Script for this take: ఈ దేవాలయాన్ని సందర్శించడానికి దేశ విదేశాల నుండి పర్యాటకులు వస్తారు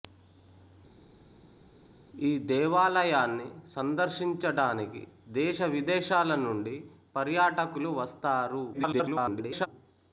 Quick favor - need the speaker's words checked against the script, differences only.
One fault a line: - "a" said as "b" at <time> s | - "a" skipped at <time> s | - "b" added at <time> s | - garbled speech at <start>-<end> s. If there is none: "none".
- garbled speech at 8.7-9.7 s